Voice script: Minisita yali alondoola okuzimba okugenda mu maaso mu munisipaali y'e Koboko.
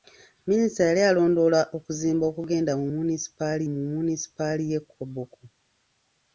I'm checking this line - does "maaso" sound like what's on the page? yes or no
no